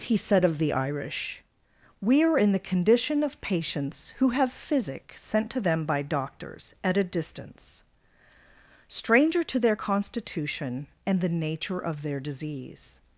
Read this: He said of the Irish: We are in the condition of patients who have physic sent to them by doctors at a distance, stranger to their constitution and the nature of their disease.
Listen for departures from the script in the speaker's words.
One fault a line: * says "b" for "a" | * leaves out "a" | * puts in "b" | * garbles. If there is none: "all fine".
all fine